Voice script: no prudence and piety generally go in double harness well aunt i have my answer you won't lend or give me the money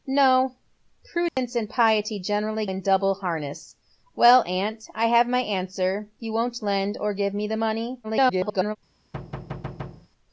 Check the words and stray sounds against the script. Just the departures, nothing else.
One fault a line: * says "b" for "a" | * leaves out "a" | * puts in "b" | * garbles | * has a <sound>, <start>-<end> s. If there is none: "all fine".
* has a dropout, 1.3-1.4 s
* leaves out "go"
* garbles
* has a thud, 9.1-10.1 s